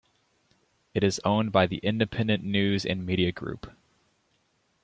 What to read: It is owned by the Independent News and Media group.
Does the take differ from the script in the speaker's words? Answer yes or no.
no